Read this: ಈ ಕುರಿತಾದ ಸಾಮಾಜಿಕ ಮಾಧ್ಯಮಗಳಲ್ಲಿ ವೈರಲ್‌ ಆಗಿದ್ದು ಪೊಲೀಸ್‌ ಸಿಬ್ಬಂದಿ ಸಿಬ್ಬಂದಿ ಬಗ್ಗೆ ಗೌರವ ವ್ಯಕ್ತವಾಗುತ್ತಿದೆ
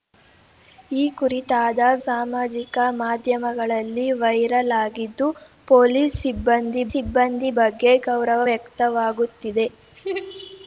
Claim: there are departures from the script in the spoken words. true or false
false